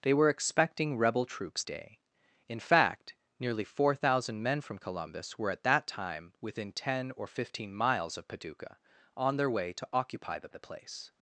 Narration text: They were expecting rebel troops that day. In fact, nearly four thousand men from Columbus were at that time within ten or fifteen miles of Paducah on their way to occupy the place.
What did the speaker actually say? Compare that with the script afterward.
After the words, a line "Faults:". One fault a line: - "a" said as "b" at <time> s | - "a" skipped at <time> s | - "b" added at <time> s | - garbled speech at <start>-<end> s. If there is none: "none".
They were expecting rebel troops day. In fact, nearly four thousand men from Columbus were at that time within ten or fifteen miles of Paducah on their way to occupy the the place.
Faults:
- "that" skipped at 1.6 s
- "the" added at 10.5 s